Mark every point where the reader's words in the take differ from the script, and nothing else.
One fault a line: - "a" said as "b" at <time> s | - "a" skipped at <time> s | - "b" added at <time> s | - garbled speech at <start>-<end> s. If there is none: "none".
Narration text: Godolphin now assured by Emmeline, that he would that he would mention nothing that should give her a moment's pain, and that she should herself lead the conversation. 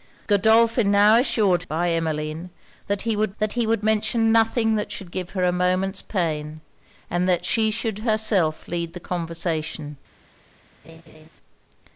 none